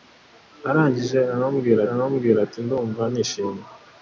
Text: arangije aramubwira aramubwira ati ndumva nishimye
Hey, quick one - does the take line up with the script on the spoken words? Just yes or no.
yes